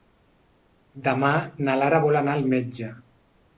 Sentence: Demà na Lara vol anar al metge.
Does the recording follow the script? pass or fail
pass